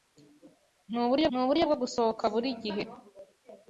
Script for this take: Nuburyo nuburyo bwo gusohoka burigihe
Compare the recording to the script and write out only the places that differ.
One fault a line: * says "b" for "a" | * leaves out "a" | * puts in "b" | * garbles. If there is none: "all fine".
all fine